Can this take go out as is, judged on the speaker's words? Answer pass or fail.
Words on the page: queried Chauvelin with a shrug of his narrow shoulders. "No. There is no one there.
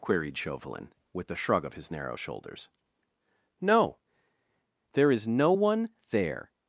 pass